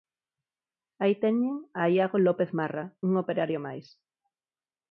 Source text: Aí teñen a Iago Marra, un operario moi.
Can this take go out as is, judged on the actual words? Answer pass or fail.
fail